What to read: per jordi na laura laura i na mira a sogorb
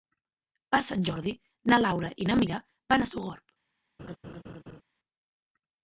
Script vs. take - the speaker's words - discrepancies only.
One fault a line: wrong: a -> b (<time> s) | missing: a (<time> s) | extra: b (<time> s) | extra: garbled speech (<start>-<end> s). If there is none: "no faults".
extra: sant (0.9 s)
missing: laura (2.1 s)
extra: van (2.9 s)